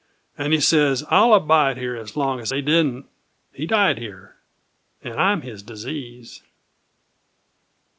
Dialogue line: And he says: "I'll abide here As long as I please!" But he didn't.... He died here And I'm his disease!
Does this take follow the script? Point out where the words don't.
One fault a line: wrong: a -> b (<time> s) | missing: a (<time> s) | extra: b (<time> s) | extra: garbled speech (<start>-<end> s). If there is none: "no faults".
missing: I please But (2.5 s)